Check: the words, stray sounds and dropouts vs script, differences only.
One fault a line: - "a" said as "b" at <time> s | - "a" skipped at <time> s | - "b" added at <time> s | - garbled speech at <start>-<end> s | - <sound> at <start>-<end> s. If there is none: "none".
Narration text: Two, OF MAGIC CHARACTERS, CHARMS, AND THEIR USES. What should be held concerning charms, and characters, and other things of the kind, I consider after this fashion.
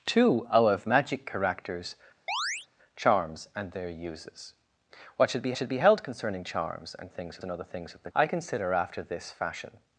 - chirp at 2.3-2.7 s
- "should be" added at 5.6 s
- "characters" said as "things" at 7.1 s
- "kind" skipped at 8.1 s